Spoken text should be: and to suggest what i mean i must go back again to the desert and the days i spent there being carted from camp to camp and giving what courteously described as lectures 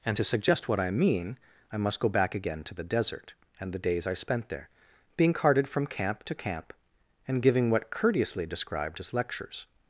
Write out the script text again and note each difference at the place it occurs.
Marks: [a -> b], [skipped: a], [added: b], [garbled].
and to suggest what i mean i must go back again to the desert and the days i spent there being carted from camp to camp and giving what courteously described as lectures